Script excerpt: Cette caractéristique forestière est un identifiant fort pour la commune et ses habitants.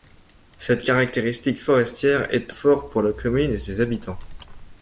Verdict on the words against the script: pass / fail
fail